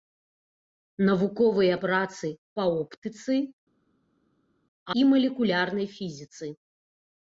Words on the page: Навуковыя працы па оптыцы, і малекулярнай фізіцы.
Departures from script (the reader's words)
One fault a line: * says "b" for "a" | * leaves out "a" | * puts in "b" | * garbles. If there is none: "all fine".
all fine